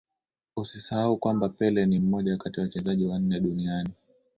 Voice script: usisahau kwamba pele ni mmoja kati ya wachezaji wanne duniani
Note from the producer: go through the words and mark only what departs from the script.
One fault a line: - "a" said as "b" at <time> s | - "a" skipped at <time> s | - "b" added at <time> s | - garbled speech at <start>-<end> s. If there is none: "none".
none